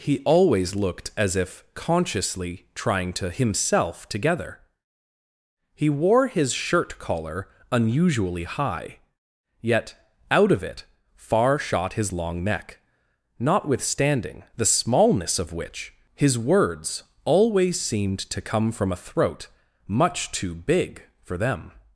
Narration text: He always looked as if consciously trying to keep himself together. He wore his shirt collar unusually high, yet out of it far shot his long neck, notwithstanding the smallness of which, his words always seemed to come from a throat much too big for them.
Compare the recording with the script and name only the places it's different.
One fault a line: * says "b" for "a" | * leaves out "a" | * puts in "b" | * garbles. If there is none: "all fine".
* leaves out "keep"